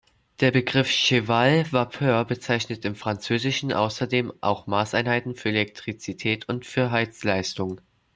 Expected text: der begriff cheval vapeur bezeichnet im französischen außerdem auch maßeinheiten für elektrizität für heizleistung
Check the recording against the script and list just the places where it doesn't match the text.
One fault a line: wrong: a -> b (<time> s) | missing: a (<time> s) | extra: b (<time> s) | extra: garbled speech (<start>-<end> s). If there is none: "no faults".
extra: und (6.5 s)